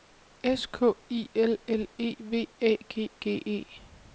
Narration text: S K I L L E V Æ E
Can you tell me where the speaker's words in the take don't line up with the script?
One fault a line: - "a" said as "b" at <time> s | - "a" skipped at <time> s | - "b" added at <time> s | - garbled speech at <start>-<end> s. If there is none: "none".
- "G G" added at 2.9 s